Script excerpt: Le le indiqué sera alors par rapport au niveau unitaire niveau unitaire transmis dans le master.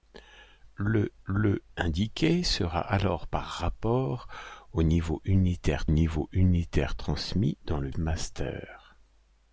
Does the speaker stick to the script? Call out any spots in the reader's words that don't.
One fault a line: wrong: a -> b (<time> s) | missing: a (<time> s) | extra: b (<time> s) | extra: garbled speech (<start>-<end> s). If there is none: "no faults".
no faults